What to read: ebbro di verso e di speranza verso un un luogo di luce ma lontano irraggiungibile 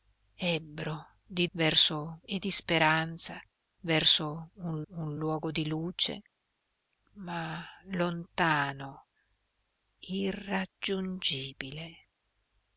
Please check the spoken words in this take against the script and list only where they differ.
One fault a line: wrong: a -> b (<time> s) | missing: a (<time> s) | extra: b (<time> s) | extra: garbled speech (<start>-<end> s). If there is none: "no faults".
no faults